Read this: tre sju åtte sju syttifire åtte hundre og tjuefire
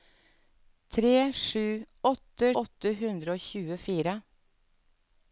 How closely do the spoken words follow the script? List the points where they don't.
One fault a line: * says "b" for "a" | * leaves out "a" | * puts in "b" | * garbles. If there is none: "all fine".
* leaves out "sju syttifire"